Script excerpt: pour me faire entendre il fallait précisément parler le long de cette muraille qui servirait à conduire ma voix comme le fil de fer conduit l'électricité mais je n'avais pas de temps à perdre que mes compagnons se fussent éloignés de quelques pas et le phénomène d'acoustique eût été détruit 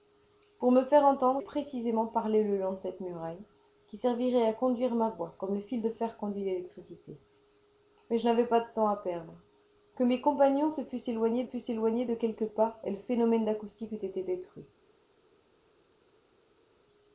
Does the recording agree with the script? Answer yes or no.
no